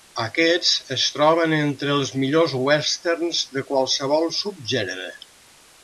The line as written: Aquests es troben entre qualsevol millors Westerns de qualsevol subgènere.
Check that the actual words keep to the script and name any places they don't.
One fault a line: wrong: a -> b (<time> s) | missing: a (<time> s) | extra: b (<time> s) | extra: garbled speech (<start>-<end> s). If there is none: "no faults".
wrong: qualsevol -> els (1.9 s)